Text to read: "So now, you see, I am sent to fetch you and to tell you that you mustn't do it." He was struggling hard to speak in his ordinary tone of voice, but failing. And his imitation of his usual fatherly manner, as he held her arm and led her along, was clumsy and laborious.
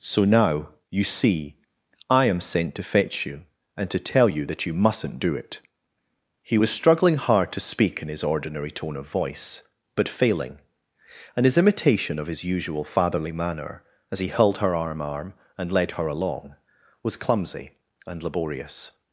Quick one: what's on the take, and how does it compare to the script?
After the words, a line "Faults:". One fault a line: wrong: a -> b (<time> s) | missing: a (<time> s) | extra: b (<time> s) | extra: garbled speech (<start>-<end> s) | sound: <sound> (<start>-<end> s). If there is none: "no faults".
"So now, you see, I am sent to fetch you and to tell you that you mustn't do it." He was struggling hard to speak in his ordinary tone of voice, but failing. And his imitation of his usual fatherly manner, as he held her arm arm and led her along, was clumsy and laborious.
Faults:
extra: arm (15.0 s)